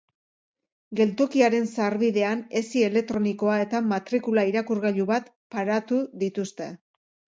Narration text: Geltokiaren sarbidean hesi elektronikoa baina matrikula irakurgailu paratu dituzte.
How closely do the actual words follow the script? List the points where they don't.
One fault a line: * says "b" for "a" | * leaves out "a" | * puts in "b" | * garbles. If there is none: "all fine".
* says "eta" for "baina"
* puts in "bat"